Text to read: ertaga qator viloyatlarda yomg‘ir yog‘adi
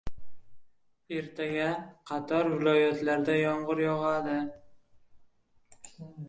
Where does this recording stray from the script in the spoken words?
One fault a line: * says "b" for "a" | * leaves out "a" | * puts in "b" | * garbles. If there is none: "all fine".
all fine